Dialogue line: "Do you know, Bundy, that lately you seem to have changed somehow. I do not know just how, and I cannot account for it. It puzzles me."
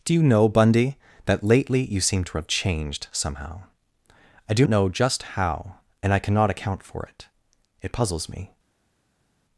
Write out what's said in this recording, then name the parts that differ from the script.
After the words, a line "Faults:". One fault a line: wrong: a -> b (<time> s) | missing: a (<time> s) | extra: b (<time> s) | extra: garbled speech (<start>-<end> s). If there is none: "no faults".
"Do you know, Bundy, that lately you seem to have changed somehow. I do know just how, and I cannot account for it. It puzzles me."
Faults:
missing: not (4.7 s)